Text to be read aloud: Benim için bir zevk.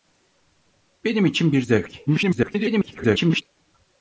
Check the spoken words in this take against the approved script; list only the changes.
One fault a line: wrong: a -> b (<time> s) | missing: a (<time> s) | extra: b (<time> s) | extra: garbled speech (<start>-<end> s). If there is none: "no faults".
extra: garbled speech (2.1-3.4 s)